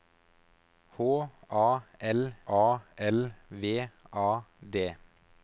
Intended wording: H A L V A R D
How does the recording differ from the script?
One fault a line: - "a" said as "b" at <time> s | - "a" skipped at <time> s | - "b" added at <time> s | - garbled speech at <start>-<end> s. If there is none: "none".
- "A L" added at 2.5 s
- "R" skipped at 4.4 s